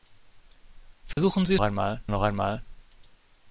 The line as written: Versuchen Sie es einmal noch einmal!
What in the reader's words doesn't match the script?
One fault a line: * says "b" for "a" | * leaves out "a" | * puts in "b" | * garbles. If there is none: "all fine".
all fine